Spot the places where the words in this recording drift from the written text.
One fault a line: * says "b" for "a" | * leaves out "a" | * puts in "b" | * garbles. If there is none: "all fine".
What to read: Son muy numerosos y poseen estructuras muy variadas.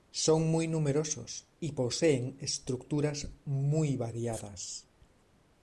all fine